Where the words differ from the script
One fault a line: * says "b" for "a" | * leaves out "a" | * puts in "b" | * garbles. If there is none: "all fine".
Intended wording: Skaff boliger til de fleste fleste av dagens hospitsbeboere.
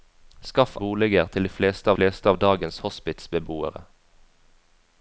all fine